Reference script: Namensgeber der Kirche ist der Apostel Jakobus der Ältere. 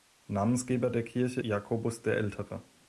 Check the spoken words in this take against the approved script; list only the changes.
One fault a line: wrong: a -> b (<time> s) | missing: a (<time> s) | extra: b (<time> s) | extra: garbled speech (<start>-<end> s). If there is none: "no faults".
missing: ist der Apostel (1.4 s)